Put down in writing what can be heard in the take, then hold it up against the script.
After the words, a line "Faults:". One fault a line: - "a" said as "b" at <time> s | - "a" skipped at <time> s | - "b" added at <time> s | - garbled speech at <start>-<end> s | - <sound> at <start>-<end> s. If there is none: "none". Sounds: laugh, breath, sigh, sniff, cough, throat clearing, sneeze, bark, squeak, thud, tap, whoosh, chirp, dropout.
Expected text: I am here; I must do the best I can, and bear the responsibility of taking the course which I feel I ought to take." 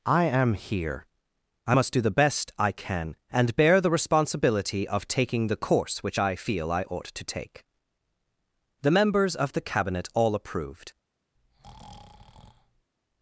I am here; I must do the best I can, and bear the responsibility of taking the course which I feel I ought to take." The members of the cabinet all approved
Faults:
- "The members of the cabinet all approved" added at 8.8 s
- breath at 11.4-12.9 s